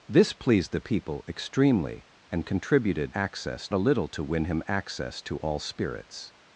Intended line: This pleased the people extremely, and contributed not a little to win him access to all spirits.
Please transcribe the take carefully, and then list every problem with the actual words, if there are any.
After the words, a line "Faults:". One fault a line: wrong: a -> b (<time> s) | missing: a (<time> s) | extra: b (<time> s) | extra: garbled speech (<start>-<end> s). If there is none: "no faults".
This pleased the people extremely, and contributed access a little to win him access to all spirits.
Faults:
wrong: not -> access (3.1 s)